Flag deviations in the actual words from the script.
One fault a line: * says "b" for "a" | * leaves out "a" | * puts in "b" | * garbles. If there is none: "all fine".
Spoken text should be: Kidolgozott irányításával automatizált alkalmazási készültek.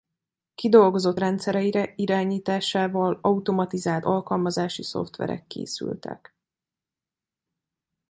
* puts in "rendszereire"
* puts in "szoftverek"